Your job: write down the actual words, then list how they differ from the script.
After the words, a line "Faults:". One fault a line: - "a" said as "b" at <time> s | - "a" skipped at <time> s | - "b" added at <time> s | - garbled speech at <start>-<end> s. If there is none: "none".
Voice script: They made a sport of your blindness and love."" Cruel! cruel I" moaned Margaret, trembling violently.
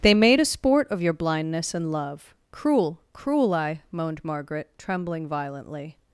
They made a sport of your blindness and love."" Cruel! cruel I" moaned Margaret, trembling violently.
Faults:
none